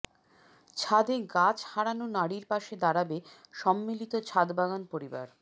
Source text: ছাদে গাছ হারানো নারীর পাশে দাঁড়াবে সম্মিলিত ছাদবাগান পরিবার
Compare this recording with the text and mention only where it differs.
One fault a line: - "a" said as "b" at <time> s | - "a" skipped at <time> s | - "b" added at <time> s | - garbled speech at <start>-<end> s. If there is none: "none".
none